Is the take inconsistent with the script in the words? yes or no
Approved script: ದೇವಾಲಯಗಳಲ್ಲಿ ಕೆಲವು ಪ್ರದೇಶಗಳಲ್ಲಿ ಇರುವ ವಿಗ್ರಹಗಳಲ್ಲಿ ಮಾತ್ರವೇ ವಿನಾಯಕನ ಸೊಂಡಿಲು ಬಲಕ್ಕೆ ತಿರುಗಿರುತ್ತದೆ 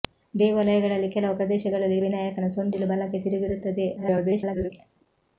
yes